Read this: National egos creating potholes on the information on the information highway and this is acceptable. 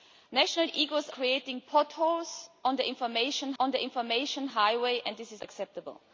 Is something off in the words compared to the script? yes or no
no